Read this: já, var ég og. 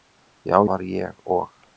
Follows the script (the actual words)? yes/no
yes